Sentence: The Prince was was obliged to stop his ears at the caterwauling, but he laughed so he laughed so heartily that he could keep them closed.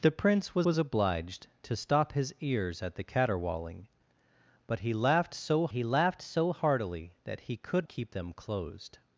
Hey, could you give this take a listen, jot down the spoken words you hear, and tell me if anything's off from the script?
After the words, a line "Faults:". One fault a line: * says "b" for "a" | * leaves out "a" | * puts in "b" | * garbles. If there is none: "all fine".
The Prince was was obliged to stop his ears at the caterwauling, but he laughed so he laughed so heartily that he could keep them closed.
Faults:
all fine